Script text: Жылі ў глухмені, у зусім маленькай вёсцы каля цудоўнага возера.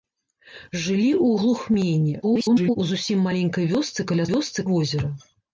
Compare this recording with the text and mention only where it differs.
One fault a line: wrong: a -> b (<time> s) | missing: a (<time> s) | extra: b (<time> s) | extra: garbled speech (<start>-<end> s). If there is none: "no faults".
extra: garbled speech (2.2-2.8 s)
wrong: цудоўнага -> вёсцы (4.3 s)